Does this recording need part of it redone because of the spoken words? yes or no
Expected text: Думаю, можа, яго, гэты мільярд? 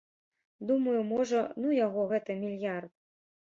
yes